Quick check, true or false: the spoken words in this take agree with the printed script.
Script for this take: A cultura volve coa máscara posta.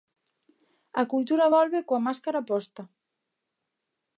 true